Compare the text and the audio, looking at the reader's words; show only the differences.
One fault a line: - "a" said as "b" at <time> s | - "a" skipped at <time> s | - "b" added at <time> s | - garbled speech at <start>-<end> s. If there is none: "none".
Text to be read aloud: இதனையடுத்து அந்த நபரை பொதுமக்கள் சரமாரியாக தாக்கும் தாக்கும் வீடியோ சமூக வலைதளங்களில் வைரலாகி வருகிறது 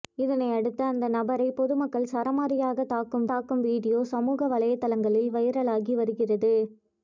none